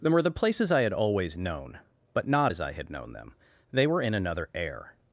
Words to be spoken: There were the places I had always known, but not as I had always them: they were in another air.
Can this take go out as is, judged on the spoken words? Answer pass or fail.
fail